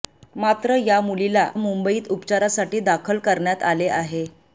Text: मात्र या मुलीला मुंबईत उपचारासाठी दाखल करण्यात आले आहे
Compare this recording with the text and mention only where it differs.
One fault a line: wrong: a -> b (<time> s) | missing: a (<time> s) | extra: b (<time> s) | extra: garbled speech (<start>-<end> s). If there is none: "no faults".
no faults